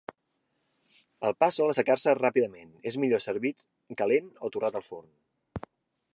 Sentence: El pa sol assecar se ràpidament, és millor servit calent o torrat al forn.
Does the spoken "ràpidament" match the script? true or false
true